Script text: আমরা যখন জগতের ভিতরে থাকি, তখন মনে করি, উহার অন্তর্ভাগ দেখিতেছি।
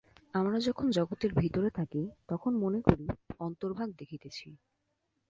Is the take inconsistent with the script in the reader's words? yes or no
yes